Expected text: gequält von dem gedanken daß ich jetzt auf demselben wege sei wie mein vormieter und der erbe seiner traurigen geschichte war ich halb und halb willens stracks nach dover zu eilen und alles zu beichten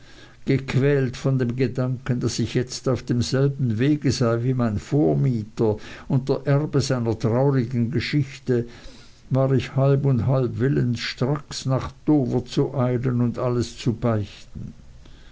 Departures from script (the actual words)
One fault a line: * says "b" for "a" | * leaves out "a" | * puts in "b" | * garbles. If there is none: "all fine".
all fine